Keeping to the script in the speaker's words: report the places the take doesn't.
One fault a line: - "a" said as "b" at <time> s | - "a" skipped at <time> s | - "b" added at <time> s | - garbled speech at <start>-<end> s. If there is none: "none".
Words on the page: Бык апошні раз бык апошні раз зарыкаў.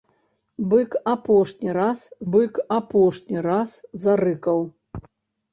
none